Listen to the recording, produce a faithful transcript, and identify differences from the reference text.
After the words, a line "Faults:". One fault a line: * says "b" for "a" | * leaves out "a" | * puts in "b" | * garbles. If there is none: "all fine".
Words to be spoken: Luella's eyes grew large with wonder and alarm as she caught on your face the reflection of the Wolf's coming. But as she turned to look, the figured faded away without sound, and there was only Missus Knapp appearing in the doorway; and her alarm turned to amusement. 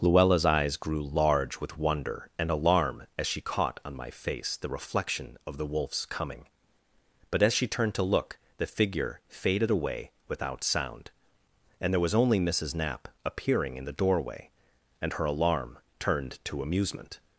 Luella's eyes grew large with wonder and alarm as she caught on my face the reflection of the Wolf's coming. But as she turned to look, the figure faded away without sound, and there was only Missus Knapp appearing in the doorway; and her alarm turned to amusement.
Faults:
* says "my" for "your"
* says "figure" for "figured"